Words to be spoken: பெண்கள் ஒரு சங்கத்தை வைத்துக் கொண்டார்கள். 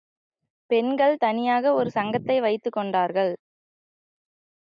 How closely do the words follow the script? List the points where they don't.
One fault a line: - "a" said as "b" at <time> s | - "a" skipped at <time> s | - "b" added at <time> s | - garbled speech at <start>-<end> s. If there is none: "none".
- "தனியாக" added at 1.2 s